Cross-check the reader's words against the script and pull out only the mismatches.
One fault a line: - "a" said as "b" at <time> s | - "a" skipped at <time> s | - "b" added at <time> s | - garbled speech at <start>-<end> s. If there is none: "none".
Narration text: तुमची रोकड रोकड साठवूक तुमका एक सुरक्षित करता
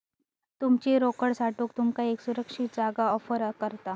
- "रोकड" skipped at 1.3 s
- "जागा ऑफर" added at 2.8 s